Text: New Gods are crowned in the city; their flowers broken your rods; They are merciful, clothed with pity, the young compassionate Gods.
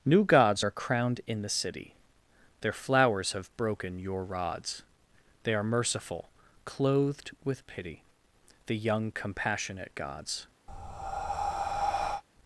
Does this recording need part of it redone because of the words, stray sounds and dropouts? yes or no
yes